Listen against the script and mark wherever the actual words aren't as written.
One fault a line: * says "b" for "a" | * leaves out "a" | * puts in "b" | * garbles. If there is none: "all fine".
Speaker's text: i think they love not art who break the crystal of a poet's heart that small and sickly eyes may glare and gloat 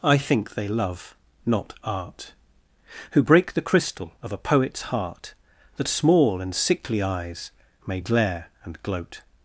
all fine